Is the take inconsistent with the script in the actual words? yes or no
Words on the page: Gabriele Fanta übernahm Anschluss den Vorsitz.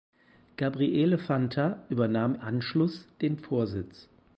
no